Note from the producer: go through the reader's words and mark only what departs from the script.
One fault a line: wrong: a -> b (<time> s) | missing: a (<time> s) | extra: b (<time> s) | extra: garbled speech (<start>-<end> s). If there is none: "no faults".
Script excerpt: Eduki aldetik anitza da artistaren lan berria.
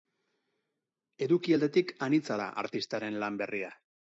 no faults